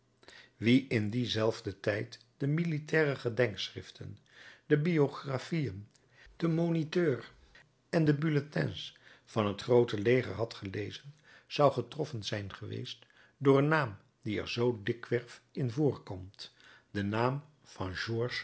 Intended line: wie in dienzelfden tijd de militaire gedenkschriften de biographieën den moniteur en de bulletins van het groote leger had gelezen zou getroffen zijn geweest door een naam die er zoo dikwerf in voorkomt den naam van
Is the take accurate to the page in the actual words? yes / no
yes